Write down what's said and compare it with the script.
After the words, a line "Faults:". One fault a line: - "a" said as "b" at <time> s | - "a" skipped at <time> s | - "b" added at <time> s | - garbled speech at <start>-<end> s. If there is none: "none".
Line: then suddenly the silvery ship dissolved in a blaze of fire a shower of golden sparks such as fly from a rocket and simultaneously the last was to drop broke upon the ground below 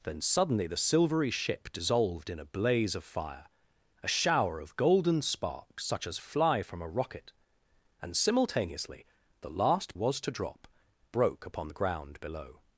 then suddenly the silvery ship dissolved in a blaze of fire a shower of golden sparks such as fly from a rocket and simultaneously the last was to drop broke upon the ground below
Faults:
none